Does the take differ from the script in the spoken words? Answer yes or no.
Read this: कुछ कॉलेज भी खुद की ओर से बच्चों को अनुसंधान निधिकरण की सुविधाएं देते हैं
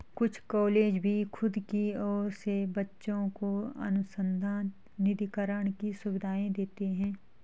no